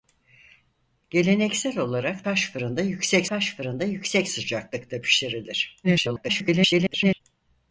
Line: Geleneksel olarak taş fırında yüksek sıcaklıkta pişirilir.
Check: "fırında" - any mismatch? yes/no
no